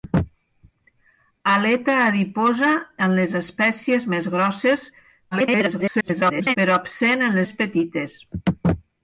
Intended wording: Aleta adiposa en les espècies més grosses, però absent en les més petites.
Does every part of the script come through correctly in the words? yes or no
no